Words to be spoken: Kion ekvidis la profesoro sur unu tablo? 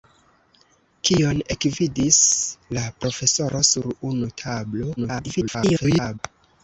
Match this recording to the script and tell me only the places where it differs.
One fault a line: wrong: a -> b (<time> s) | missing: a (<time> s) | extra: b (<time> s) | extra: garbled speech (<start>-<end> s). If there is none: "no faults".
extra: garbled speech (5.0-6.2 s)